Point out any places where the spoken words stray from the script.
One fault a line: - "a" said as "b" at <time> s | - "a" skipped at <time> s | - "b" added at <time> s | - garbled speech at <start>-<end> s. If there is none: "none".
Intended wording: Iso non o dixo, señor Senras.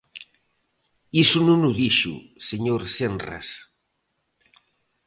none